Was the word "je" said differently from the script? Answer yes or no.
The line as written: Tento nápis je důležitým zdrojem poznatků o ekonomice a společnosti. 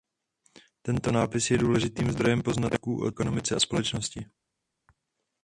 no